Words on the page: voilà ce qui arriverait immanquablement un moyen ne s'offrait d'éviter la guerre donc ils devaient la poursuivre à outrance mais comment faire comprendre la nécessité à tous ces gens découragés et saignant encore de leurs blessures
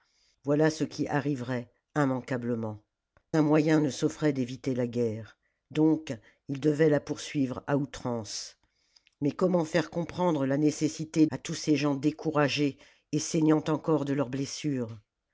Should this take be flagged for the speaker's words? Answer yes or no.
no